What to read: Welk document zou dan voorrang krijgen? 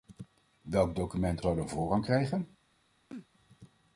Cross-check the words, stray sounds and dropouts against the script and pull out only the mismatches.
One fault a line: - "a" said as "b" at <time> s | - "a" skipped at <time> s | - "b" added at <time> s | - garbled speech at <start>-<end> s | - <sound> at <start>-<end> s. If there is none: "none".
- sneeze at 3.1-3.3 s